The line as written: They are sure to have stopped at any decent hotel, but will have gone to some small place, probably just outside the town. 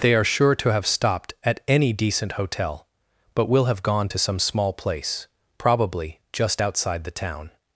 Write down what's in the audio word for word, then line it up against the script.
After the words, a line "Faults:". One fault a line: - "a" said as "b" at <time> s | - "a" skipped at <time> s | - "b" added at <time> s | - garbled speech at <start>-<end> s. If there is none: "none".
They are sure to have stopped at any decent hotel, but will have gone to some small place, probably just outside the town.
Faults:
none